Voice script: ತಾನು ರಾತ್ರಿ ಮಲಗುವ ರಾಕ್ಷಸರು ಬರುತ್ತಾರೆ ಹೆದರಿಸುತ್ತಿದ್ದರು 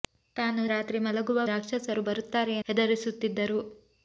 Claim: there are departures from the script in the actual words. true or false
false